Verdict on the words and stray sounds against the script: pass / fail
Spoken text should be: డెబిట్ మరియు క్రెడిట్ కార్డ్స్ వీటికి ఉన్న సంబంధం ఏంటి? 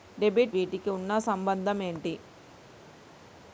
fail